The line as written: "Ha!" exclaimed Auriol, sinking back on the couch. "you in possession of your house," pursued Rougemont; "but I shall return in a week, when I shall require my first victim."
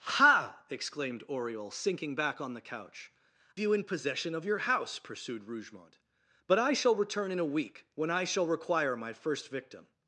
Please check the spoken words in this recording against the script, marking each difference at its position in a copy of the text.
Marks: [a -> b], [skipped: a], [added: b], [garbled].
"Ha!" exclaimed Auriol, sinking back on the couch. "you in possession of your house," pursued Rougemont; "but I shall return in a week, when I shall require my first victim."